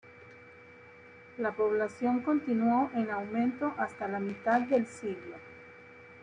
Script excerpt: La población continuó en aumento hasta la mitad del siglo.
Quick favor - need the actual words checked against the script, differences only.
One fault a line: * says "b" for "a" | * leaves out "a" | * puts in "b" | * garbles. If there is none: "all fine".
all fine